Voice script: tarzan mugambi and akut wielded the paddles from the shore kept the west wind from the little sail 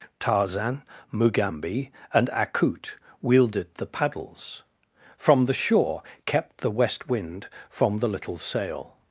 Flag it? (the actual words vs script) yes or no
no